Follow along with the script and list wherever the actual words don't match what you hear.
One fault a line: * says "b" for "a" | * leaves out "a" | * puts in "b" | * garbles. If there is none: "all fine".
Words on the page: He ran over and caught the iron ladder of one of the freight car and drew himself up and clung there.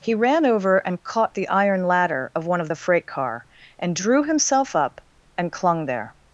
all fine